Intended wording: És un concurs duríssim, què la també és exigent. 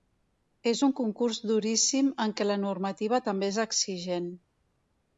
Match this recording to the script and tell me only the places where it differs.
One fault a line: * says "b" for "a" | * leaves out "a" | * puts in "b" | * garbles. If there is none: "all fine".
* puts in "en"
* puts in "normativa"